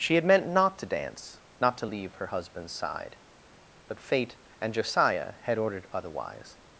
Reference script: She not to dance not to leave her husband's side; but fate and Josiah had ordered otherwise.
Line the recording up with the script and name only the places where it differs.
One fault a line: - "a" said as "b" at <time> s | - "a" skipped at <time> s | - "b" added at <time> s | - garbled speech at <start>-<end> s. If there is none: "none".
- "had meant" added at 0.1 s